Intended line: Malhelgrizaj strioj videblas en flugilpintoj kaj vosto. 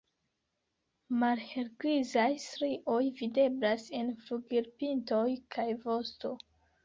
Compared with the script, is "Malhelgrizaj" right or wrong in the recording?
right